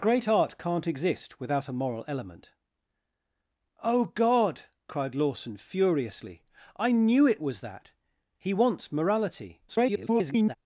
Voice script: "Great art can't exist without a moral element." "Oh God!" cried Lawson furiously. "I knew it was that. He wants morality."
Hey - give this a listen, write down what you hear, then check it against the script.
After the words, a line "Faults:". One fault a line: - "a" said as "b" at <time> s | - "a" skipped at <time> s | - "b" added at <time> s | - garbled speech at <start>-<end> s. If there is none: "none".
"Great art can't exist without a moral element." "Oh God!" cried Lawson furiously. "I knew it was that. He wants morality." [garbled]
Faults:
- garbled speech at 9.7-10.6 s